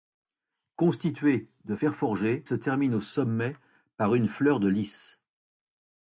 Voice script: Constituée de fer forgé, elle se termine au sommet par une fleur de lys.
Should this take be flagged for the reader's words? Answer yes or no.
yes